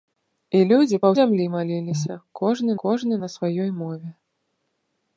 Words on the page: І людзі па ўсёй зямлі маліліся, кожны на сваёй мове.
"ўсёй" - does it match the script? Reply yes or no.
no